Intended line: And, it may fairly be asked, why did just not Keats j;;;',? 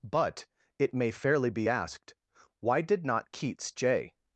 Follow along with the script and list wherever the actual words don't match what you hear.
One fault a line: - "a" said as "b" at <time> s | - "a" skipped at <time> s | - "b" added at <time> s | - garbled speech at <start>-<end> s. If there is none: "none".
- "And" said as "But" at 0.0 s
- "just" skipped at 3.0 s